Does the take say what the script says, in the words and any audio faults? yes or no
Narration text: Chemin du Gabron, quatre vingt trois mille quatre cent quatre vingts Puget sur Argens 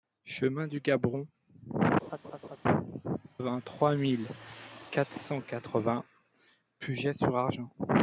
no